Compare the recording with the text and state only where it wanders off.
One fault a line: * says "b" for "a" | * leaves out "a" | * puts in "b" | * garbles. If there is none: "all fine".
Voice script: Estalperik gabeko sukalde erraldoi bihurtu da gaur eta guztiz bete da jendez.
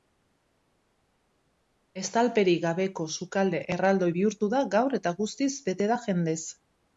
all fine